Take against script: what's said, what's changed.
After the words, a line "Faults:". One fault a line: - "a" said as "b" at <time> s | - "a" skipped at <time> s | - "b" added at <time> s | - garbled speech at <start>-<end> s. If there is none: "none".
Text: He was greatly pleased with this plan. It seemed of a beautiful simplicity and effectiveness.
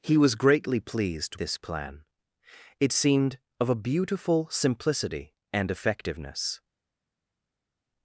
He was greatly pleased this plan. It seemed of a beautiful simplicity and effectiveness.
Faults:
- "with" skipped at 1.4 s